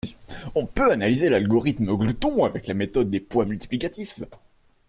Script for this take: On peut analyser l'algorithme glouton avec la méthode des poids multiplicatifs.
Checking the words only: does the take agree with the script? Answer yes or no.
yes